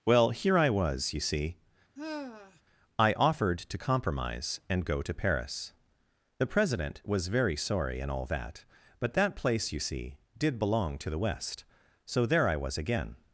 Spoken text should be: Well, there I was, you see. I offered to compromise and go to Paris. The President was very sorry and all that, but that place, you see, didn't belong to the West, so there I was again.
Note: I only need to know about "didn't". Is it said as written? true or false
false